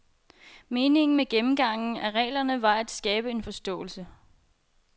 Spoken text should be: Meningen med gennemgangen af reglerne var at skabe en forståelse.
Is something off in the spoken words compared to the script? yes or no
no